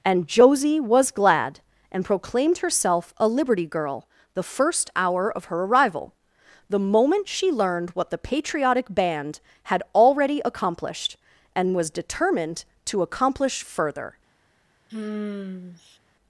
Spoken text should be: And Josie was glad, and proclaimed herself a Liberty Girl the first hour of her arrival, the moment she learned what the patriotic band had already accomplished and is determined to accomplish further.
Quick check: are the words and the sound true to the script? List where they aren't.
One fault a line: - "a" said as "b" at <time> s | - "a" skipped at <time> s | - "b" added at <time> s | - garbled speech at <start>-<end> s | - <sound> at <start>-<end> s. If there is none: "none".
- "is" said as "was" at 11.8 s
- sigh at 14.9-16.0 s